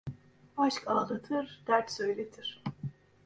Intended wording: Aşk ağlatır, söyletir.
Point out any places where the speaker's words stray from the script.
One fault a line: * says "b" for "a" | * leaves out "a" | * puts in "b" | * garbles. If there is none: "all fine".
* puts in "dert"